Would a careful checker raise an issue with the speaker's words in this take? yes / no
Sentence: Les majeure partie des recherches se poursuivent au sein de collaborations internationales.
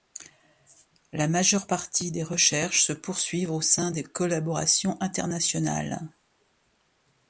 yes